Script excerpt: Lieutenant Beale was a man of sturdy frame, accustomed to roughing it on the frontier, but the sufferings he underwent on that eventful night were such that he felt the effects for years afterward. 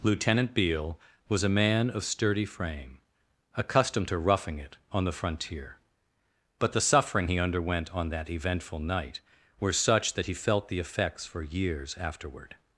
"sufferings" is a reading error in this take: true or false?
true